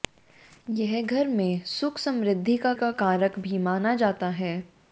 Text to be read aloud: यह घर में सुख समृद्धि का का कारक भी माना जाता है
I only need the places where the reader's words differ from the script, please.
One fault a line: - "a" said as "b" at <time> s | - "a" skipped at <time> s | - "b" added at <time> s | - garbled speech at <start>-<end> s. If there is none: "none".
none